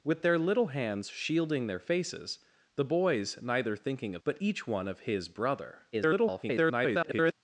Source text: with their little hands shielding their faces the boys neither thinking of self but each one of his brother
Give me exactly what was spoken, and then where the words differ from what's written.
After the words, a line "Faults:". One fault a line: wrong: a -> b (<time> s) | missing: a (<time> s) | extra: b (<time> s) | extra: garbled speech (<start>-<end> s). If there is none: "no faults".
with their little hands shielding their faces the boys neither thinking of but each one of his brother [garbled]
Faults:
missing: self (4.2 s)
extra: garbled speech (5.9-7.3 s)